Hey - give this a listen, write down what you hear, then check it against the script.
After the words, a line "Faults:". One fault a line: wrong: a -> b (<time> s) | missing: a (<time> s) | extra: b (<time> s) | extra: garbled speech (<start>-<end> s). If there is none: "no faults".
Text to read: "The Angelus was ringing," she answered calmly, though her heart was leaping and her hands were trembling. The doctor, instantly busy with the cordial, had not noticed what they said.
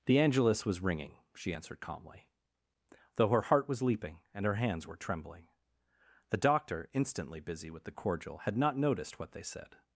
"The Angelus was ringing," she answered calmly, though her heart was leaping and her hands were trembling. The doctor, instantly busy with the cordial, had not noticed what they said.
Faults:
no faults